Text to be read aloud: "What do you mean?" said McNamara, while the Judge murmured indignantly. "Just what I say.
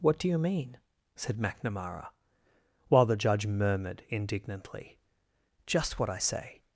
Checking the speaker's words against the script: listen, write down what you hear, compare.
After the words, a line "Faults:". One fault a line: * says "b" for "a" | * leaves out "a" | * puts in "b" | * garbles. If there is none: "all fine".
"What do you mean?" said McNamara, while the Judge murmured indignantly. "Just what I say.
Faults:
all fine